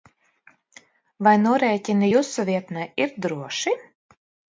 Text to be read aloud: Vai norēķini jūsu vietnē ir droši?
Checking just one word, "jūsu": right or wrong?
right